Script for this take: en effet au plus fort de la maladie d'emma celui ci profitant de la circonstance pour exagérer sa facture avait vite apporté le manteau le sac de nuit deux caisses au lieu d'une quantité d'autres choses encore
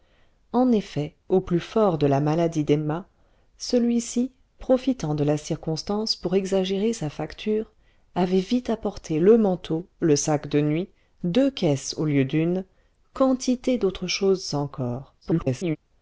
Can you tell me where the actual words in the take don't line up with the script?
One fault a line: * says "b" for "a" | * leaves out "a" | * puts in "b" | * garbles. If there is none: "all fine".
* garbles